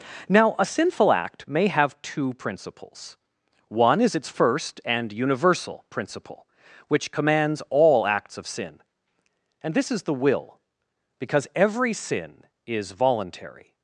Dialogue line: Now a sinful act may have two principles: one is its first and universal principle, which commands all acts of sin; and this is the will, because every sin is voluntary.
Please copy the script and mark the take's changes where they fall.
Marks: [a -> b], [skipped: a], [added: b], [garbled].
Now a sinful act may have two principles: one is its first and universal principle, which commands all acts of sin; and this is the will, because every sin is voluntary.